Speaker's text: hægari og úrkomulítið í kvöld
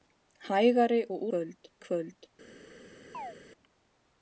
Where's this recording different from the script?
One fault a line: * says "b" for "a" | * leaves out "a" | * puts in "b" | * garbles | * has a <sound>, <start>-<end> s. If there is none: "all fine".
* says "kvöld" for "úrkomulítið"
* has a chirp, 3.1-3.4 s